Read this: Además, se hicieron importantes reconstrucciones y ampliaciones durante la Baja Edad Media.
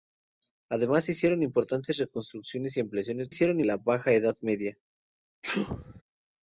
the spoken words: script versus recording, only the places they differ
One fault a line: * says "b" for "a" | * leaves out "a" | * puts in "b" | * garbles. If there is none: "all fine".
* says "hicieron" for "durante"